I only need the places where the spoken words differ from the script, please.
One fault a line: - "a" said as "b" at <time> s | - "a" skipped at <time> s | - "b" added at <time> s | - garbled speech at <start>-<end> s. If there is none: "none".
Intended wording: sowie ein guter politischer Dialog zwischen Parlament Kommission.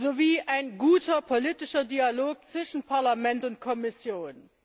- "und" added at 3.4 s